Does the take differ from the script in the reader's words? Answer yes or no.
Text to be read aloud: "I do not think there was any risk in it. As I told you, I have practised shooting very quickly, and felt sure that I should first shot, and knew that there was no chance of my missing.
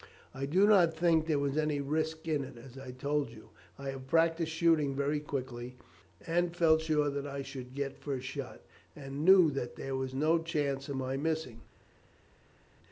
yes